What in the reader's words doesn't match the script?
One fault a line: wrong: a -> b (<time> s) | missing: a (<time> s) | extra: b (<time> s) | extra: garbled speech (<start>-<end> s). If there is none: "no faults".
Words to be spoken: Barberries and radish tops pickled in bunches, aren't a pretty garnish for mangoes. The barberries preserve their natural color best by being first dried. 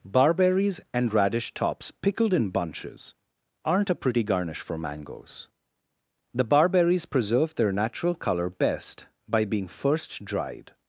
no faults